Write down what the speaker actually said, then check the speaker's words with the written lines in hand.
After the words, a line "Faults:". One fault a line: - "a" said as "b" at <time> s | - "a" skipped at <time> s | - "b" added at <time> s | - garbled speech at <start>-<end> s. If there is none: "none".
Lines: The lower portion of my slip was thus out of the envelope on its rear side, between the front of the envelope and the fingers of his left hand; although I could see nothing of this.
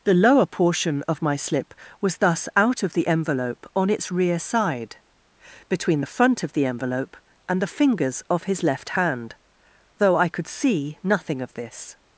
The lower portion of my slip was thus out of the envelope on its rear side, between the front of the envelope and the fingers of his left hand; though I could see nothing of this.
Faults:
- "although" said as "though" at 10.0 s